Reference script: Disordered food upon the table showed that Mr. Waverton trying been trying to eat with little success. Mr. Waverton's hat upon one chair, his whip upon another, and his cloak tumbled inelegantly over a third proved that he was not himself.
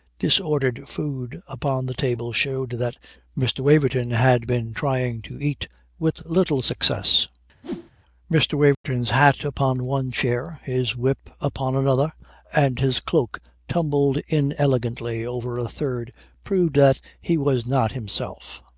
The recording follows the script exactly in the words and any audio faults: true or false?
false